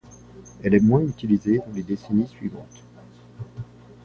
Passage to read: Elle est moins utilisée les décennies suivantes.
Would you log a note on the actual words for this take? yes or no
yes